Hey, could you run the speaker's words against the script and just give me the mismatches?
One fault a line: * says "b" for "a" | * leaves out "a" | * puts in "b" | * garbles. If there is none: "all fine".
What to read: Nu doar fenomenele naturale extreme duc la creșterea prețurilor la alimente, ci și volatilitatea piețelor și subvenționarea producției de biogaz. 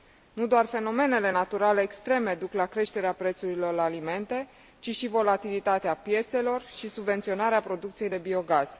all fine